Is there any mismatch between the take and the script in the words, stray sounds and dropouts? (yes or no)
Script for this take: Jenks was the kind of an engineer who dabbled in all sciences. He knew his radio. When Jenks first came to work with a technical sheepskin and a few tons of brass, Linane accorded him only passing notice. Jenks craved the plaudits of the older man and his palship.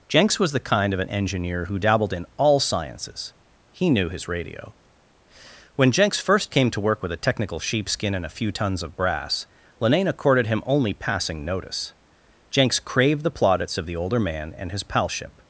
no